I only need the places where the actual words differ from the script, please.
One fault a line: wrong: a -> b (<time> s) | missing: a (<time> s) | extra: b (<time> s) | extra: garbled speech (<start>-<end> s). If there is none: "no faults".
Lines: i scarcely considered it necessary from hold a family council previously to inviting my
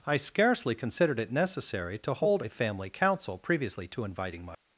wrong: from -> to (2.0 s)